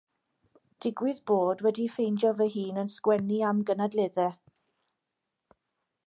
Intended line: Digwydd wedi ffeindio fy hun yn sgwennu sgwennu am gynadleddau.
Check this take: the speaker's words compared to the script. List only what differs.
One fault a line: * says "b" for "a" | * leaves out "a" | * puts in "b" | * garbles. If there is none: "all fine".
* puts in "bod"
* leaves out "sgwennu"